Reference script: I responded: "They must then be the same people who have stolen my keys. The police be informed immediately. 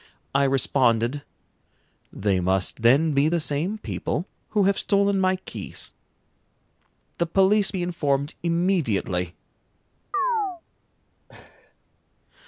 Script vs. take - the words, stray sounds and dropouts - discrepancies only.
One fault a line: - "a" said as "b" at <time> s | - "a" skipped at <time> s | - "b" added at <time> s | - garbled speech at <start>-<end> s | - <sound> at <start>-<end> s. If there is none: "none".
- chirp at 10.1-10.6 s
- laugh at 11.3-11.8 s